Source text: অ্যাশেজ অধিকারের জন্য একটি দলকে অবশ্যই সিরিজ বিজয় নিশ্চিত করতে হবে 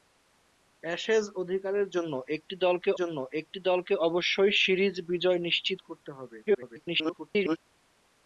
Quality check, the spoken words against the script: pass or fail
fail